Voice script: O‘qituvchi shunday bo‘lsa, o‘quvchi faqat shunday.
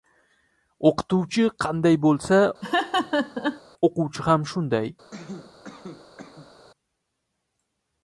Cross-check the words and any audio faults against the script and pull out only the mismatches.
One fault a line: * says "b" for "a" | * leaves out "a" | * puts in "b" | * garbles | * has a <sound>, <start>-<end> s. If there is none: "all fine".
* says "qanday" for "shunday"
* has a laugh, 2.6-3.6 s
* says "ham" for "faqat"
* has a cough, 5.1-6.5 s